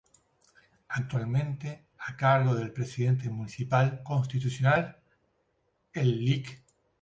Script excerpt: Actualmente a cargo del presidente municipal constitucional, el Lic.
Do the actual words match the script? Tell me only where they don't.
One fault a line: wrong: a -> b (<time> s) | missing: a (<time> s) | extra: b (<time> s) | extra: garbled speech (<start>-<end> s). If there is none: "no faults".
no faults